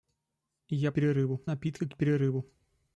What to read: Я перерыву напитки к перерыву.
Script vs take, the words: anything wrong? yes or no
no